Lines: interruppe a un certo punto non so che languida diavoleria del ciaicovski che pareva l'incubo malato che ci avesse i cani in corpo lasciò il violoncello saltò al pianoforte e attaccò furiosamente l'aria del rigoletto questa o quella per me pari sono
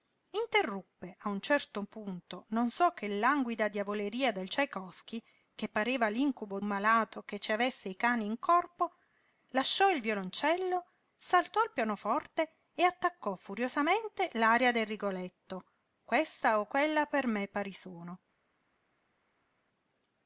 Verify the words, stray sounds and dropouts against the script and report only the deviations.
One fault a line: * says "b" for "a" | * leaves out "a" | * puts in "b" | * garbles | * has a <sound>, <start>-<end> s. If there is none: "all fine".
all fine